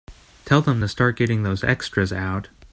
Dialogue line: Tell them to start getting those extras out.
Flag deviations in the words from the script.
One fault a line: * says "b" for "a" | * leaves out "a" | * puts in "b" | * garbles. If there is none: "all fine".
all fine